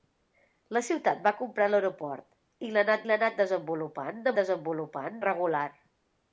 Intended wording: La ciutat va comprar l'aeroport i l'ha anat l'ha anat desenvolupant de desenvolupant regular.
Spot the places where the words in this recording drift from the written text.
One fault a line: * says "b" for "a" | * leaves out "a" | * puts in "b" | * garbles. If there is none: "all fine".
all fine